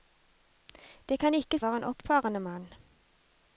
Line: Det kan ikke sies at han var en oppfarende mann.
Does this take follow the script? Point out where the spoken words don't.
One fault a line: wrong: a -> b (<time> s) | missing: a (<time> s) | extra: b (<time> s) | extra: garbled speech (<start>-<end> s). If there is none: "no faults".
missing: sies at han (1.6 s)